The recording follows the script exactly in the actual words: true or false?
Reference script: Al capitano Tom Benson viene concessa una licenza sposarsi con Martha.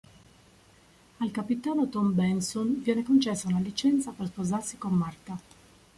false